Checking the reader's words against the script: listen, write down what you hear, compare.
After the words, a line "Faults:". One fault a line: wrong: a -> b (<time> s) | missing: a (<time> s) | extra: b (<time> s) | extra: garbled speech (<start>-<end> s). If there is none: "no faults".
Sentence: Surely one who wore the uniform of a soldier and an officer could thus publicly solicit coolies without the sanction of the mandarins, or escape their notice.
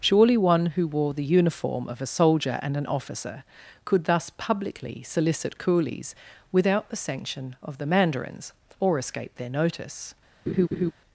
Surely one who wore the uniform of a soldier and an officer could thus publicly solicit coolies without the sanction of the mandarins, or escape their notice.
Faults:
no faults